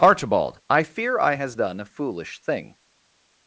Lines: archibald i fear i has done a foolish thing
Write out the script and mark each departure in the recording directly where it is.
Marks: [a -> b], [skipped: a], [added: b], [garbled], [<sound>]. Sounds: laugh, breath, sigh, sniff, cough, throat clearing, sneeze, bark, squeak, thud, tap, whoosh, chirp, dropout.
archibald i fear i has done a foolish thing